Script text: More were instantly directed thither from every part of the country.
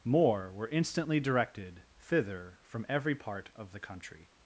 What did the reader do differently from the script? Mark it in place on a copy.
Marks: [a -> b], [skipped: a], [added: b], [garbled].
More were instantly directed thither from every part of the country.